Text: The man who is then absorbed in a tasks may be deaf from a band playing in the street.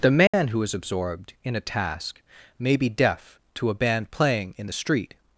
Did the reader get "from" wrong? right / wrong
wrong